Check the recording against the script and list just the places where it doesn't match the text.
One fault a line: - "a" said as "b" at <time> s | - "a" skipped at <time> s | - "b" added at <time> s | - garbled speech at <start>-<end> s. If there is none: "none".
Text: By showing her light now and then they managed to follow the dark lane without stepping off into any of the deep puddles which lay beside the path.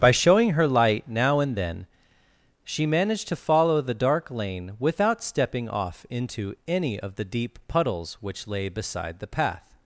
- "they" said as "she" at 2.6 s